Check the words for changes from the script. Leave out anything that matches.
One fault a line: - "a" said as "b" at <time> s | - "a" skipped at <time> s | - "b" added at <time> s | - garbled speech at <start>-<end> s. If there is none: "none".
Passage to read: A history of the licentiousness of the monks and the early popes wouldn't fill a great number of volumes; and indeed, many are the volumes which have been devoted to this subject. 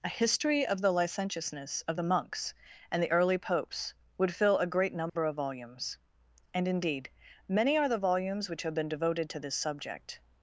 - "wouldn't" said as "would" at 4.2 s